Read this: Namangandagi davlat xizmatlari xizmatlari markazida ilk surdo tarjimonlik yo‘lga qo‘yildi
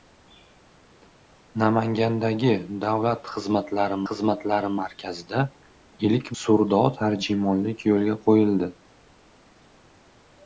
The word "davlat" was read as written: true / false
true